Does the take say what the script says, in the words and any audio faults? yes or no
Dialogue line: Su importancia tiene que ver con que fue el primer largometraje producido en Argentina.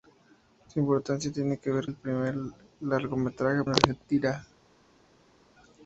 no